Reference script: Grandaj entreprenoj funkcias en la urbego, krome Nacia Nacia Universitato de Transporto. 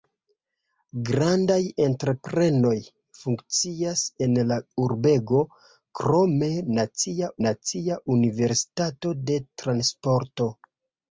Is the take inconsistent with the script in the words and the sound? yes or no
no